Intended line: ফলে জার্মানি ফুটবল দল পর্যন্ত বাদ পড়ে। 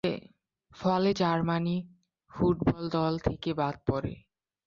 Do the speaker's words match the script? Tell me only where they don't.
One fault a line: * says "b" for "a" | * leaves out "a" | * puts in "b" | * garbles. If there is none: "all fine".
* says "থেকে" for "পর্যন্ত"